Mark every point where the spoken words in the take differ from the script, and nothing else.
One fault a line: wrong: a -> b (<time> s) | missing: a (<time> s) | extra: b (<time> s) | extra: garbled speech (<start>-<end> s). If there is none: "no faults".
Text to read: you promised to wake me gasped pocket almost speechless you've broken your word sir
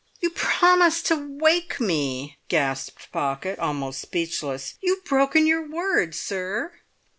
no faults